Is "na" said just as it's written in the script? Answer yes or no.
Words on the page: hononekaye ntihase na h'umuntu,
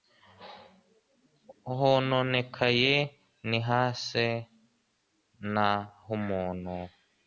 yes